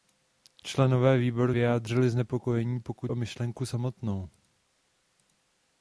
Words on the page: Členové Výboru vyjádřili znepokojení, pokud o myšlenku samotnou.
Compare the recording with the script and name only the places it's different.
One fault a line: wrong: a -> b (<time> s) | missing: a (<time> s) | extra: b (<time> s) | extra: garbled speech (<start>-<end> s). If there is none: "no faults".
no faults